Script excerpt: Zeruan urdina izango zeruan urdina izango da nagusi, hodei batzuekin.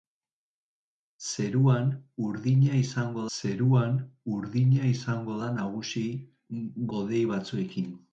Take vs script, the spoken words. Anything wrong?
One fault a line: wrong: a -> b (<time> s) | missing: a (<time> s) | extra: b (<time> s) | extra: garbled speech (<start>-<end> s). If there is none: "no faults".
no faults